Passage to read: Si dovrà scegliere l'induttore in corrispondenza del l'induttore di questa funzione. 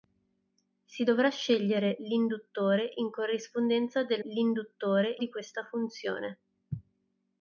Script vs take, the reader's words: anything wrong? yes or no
no